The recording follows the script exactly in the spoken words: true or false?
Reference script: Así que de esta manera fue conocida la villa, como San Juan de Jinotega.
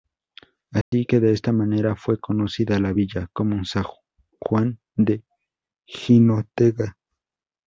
true